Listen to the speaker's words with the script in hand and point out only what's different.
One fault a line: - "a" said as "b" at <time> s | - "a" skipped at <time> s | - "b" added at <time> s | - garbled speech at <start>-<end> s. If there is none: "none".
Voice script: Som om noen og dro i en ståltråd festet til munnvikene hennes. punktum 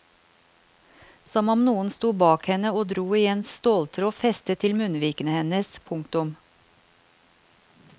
- "sto bak henne" added at 1.9 s